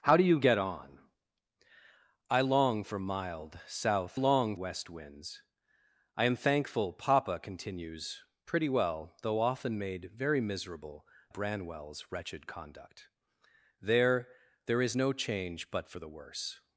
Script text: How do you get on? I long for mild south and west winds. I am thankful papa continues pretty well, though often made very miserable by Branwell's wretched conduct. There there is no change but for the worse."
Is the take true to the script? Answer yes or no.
no